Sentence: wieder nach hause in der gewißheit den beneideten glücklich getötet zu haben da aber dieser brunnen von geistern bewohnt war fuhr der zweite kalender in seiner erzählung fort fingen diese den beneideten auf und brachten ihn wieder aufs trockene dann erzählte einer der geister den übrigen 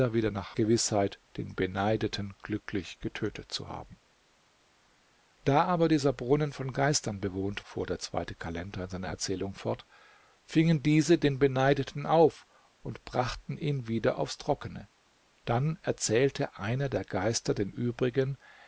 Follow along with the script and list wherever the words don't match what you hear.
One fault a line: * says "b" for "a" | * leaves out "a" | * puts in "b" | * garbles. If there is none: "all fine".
* leaves out "hause in der"
* leaves out "war"